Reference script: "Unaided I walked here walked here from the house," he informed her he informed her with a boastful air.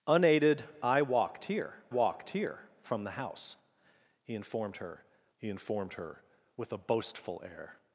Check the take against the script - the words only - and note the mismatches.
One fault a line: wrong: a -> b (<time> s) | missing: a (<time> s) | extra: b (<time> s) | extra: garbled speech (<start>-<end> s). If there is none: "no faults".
no faults